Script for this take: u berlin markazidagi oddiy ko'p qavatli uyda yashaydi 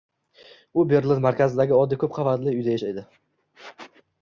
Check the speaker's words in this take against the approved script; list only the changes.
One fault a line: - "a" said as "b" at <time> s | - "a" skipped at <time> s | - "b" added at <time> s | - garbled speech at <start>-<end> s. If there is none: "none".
none